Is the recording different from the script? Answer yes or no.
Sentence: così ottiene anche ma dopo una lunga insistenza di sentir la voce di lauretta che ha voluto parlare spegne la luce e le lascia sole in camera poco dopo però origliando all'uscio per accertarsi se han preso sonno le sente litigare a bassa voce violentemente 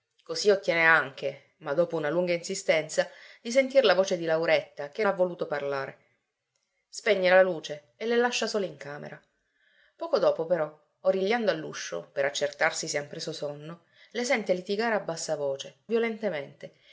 no